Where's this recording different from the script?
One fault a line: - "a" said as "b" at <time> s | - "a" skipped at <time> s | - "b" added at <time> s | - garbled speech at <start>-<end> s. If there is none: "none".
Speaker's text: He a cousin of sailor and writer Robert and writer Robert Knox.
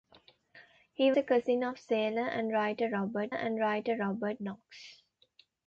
none